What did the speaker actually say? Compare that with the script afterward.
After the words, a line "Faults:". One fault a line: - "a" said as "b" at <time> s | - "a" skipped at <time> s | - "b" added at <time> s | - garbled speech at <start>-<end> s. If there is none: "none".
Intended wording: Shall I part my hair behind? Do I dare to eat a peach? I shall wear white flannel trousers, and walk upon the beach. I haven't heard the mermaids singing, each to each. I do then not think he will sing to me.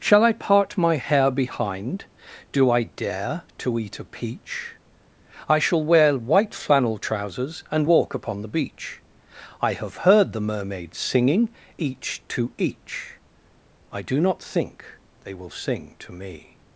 Shall I part my hair behind? Do I dare to eat a peach? I shall wear white flannel trousers, and walk upon the beach. I have heard the mermaids singing, each to each. I do not think they will sing to me.
Faults:
- "haven't" said as "have" at 9.7 s
- "then" skipped at 14.2 s
- "he" said as "they" at 15.2 s